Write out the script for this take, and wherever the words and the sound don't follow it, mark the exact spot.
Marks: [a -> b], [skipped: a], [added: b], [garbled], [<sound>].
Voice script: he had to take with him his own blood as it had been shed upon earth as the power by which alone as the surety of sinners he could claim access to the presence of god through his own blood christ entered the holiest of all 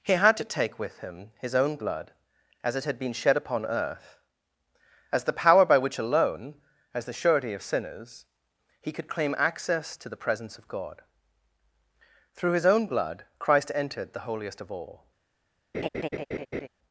he had to take with him his own blood as it had been shed upon earth as the power by which alone as the surety of sinners he could claim access to the presence of god through his own blood christ entered the holiest of all [laugh]